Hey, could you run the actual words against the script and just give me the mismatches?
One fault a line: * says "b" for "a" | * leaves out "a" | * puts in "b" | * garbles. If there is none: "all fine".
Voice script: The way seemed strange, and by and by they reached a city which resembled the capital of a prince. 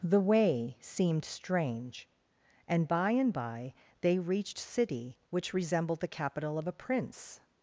* leaves out "a"